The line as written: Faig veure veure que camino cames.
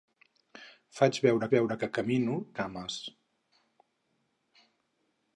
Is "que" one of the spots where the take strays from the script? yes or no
no